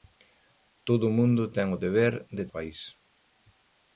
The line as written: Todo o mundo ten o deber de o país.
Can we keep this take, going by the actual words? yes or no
yes